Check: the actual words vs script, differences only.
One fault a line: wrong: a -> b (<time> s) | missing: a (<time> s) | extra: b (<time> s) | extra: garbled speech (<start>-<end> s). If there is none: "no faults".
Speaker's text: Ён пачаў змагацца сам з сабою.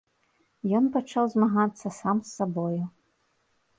no faults